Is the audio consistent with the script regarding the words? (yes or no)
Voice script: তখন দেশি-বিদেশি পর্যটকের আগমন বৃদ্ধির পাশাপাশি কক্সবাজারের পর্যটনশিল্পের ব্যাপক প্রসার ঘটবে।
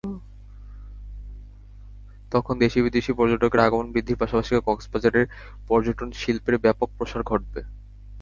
yes